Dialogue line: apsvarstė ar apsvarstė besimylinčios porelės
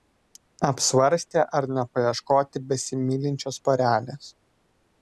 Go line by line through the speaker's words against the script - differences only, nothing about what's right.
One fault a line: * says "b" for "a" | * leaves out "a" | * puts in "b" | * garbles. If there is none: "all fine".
* says "nepaieškoti" for "apsvarstė"